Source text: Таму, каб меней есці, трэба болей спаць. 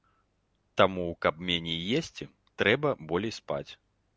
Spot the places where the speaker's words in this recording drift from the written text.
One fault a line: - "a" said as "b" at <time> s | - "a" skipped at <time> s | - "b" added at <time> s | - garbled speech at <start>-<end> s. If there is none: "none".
none